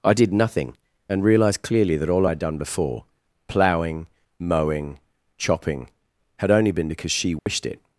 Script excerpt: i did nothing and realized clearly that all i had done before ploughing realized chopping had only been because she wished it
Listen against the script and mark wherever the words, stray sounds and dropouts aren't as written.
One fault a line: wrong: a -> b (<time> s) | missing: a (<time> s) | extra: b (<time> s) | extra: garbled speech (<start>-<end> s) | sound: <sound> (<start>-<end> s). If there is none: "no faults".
wrong: realized -> mowing (4.4 s)
sound: dropout (7.4-7.5 s)